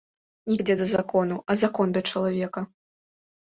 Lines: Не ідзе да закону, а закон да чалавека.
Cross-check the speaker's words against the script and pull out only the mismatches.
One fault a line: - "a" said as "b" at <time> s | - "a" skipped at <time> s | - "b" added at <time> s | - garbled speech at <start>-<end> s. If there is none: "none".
none